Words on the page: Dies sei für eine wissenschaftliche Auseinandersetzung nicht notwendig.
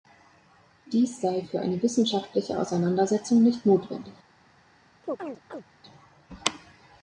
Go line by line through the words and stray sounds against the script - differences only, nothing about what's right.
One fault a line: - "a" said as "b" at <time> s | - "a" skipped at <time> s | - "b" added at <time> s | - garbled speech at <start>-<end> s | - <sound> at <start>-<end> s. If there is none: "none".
- chirp at 5.0-5.6 s